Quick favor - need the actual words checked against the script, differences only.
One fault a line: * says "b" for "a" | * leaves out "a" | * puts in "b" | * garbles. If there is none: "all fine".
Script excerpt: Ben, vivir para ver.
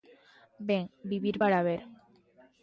all fine